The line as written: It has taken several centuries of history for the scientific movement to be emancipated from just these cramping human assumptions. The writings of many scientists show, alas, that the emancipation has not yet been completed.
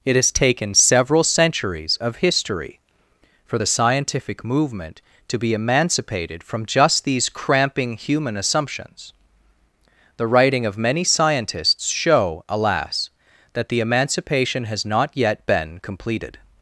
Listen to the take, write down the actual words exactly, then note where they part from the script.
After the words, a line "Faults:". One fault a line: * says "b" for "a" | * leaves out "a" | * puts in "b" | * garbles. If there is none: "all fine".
It has taken several centuries of history for the scientific movement to be emancipated from just these cramping human assumptions. The writing of many scientists show, alas, that the emancipation has not yet been completed.
Faults:
* says "writing" for "writings"